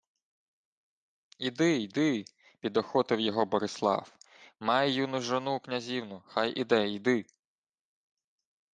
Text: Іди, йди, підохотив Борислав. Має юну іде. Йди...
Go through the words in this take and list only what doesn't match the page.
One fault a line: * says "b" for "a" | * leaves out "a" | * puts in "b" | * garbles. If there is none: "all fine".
* puts in "його"
* puts in "жону князівну хай"